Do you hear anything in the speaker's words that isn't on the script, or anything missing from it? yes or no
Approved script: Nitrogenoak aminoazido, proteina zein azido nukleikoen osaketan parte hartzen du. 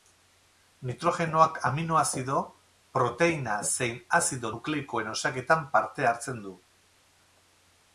no